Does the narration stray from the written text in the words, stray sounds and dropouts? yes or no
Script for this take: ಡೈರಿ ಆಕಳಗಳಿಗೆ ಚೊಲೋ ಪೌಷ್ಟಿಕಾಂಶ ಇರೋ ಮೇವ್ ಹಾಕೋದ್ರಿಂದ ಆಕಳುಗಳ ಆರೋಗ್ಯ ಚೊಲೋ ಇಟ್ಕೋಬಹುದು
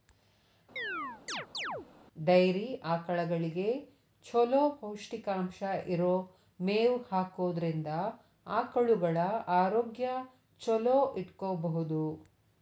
yes